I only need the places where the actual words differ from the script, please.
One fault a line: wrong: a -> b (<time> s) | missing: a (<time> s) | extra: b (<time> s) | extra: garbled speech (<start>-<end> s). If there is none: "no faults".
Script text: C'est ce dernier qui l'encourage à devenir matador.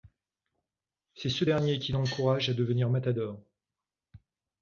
no faults